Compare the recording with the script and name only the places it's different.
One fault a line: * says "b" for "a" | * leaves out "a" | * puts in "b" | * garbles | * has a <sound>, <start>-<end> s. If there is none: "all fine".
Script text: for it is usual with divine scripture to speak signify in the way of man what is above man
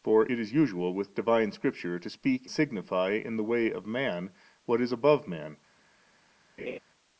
* has a laugh, 6.6-6.8 s